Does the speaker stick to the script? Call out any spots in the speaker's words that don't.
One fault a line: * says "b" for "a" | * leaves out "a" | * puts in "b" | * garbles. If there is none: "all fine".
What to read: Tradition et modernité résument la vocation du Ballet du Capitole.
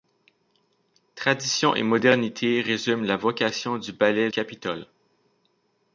* leaves out "du"